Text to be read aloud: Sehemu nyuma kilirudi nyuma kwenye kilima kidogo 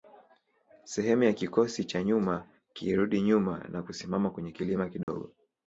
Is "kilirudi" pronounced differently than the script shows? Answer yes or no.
no